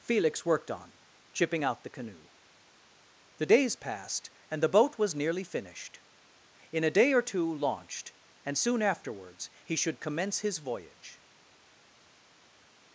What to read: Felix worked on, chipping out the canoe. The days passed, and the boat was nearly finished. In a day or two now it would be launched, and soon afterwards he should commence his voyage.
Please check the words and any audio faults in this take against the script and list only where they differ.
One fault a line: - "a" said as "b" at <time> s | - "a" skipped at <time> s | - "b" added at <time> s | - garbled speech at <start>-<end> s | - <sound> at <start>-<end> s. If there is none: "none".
- "now it would be" skipped at 7.5 s